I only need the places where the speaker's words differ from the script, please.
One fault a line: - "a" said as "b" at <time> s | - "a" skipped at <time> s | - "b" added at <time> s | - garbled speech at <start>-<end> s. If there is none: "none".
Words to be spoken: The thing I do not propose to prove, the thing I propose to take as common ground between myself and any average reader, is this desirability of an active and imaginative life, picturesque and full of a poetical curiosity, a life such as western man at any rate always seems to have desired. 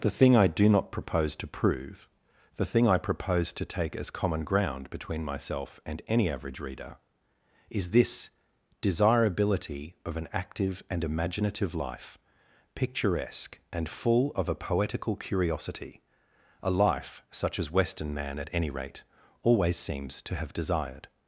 none